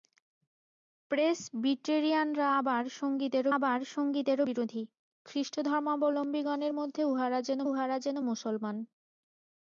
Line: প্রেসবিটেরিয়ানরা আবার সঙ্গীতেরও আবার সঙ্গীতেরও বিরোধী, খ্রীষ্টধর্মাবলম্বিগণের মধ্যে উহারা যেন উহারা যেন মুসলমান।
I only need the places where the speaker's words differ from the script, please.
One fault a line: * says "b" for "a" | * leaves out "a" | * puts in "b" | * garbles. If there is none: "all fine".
all fine